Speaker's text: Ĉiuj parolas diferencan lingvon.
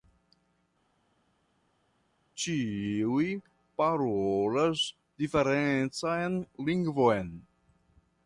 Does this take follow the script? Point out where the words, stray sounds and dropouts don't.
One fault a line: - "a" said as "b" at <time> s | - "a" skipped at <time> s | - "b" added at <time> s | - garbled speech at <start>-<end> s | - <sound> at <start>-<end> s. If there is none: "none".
none